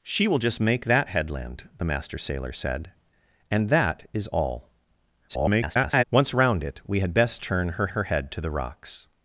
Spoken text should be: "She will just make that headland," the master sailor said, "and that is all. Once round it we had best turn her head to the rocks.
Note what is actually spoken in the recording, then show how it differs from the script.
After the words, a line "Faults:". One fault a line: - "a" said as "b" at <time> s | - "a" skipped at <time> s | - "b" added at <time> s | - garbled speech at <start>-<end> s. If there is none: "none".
"She will just make that headland," the master sailor said, "and that is all. [garbled] Once round it we had best turn her her head to the rocks.
Faults:
- garbled speech at 5.3-6.0 s
- "her" added at 7.9 s